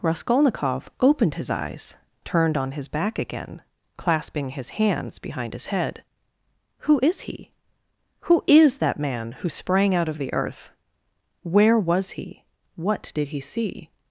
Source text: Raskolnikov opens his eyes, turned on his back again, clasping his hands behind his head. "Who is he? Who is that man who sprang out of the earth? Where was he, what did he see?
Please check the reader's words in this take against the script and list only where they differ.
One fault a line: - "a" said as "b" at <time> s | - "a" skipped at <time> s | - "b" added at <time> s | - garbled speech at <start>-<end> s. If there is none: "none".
- "opens" said as "opened" at 1.0 s